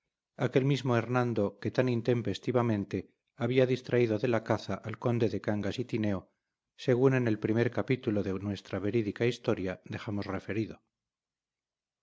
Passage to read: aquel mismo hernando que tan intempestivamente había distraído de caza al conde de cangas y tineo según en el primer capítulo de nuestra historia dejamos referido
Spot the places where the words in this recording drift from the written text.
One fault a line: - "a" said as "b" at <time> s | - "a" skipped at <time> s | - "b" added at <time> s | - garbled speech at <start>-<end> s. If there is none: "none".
- "la" added at 4.3 s
- "verídica" added at 8.8 s